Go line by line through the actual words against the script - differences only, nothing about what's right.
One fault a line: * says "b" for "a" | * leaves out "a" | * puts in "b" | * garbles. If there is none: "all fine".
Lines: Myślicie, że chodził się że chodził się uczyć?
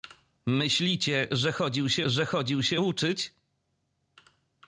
all fine